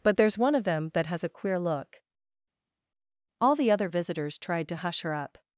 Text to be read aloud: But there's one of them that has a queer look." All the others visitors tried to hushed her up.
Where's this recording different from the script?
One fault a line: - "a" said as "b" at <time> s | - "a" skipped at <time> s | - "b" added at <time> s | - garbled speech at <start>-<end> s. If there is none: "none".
- "others" said as "other" at 3.7 s
- "hushed" said as "hush" at 4.7 s